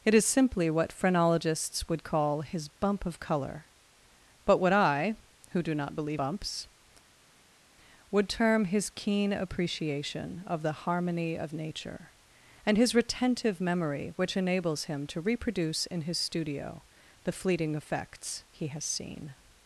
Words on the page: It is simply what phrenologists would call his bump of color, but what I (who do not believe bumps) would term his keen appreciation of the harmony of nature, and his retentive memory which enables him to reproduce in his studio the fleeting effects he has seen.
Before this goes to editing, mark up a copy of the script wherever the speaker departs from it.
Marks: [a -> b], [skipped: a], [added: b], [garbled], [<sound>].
It is simply what phrenologists would call his bump of color, but what I (who do not believe bumps) would term his keen appreciation of the harmony of nature, and his retentive memory which enables him to reproduce in his studio the fleeting effects he has seen.